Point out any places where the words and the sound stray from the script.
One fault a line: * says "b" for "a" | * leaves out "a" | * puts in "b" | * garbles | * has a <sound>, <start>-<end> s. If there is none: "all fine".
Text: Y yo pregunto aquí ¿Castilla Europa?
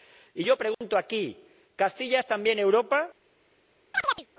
* has a dropout, 0.7-0.8 s
* puts in "es también"
* has a chirp, 3.9-4.3 s